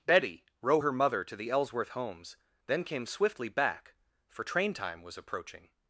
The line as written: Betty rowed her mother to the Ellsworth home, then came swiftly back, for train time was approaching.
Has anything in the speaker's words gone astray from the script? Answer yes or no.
yes